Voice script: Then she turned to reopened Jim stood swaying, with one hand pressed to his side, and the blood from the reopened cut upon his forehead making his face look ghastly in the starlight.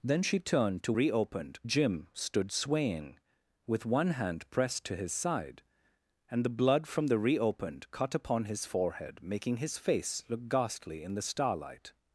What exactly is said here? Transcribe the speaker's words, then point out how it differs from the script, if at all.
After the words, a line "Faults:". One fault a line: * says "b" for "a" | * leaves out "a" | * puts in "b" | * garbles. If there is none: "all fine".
Then she turned to reopened Jim stood swaying, with one hand pressed to his side, and the blood from the reopened cut upon his forehead making his face look ghastly in the starlight.
Faults:
all fine